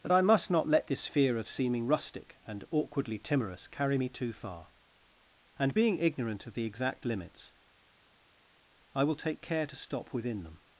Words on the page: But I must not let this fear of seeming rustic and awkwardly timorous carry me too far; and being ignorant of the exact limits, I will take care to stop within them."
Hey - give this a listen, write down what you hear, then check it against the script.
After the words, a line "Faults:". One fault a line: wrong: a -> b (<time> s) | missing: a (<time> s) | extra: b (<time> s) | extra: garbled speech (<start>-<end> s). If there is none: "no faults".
That I must not let this fear of seeming rustic and awkwardly timorous carry me too far; and being ignorant of the exact limits, I will take care to stop within them."
Faults:
wrong: But -> That (0.0 s)